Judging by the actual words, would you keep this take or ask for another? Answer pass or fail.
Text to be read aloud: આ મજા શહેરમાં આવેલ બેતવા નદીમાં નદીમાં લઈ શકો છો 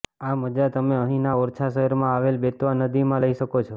fail